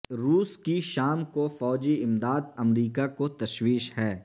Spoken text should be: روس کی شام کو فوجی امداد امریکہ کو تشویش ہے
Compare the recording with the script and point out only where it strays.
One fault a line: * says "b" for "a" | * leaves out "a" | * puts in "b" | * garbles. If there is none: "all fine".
all fine